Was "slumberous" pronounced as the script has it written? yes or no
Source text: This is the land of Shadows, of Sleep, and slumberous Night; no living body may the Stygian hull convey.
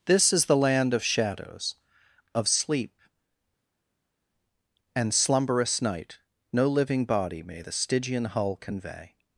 yes